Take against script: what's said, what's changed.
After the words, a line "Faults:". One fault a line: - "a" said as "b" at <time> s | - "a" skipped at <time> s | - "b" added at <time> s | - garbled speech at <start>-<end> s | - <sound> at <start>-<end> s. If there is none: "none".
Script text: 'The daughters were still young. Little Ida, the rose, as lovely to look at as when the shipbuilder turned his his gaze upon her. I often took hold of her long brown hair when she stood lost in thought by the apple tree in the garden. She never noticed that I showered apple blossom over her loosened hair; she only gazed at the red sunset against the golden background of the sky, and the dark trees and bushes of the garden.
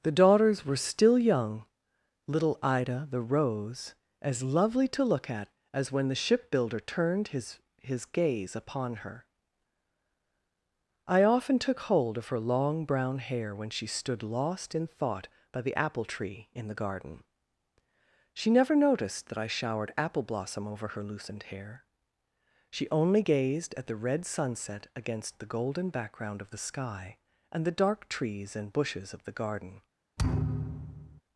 'The daughters were still young. Little Ida, the rose, as lovely to look at as when the shipbuilder turned his his gaze upon her. I often took hold of her long brown hair when she stood lost in thought by the apple tree in the garden. She never noticed that I showered apple blossom over her loosened hair; she only gazed at the red sunset against the golden background of the sky, and the dark trees and bushes of the garden.
Faults:
- thud at 30.2-31.2 s